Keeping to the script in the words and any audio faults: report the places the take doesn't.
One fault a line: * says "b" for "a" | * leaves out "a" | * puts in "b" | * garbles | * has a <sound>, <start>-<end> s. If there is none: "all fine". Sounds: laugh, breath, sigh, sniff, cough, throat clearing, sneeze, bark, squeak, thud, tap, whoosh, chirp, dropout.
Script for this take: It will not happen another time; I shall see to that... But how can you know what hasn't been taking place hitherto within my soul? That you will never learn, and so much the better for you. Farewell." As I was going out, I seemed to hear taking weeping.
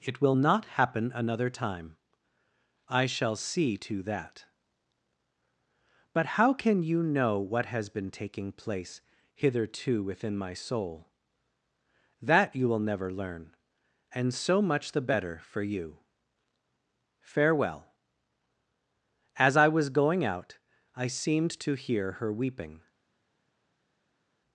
* says "has" for "hasn't"
* says "her" for "taking"